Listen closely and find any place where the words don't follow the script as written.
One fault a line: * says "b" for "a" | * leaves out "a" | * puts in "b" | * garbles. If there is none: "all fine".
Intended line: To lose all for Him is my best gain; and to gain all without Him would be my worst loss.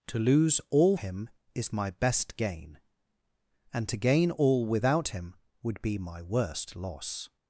* leaves out "for"